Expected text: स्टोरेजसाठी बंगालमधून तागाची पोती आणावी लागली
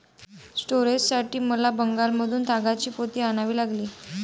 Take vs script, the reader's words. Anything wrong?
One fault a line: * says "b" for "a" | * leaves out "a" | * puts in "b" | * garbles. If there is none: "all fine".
* puts in "मला"